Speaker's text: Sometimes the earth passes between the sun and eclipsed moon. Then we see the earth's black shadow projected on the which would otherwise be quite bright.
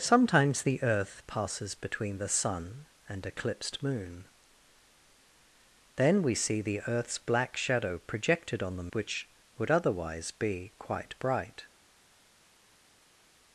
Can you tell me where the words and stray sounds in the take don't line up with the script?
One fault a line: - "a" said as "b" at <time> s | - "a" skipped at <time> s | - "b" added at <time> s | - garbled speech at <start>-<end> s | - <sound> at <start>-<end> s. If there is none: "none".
none